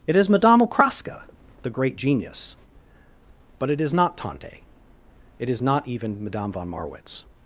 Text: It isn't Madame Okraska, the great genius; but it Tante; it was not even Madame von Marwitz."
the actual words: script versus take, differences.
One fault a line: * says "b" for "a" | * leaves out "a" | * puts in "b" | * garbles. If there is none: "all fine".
* says "is" for "isn't"
* puts in "is not"
* says "is" for "was"